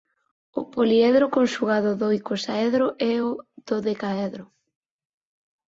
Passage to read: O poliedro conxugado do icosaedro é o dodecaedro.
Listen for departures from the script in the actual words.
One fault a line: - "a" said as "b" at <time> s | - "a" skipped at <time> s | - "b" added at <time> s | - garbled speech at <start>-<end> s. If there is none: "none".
none